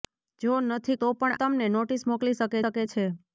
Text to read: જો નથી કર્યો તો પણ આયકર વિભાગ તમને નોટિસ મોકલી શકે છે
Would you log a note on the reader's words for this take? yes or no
yes